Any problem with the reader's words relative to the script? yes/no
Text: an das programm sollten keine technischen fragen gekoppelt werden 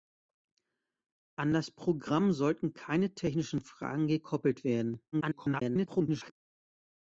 yes